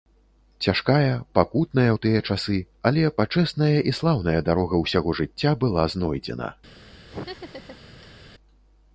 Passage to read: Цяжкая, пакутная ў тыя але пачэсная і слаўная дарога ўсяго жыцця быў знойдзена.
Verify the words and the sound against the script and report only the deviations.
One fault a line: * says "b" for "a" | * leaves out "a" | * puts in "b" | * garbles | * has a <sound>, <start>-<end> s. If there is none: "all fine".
* puts in "часы"
* says "была" for "быў"
* has a laugh, 7.1-8.2 s